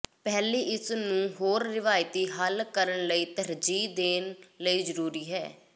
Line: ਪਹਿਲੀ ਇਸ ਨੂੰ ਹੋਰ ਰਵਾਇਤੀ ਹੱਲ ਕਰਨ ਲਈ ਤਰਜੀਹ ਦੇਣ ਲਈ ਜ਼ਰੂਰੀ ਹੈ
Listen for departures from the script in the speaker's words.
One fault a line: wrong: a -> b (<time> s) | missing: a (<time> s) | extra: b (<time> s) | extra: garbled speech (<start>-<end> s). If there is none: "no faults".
no faults